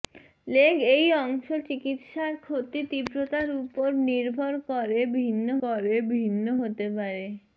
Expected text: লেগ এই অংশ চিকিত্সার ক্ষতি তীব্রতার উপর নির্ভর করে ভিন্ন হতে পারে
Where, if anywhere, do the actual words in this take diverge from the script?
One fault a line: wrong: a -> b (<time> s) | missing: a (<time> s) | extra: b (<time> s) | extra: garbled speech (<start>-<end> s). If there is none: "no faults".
extra: করে ভিন্ন (5.6 s)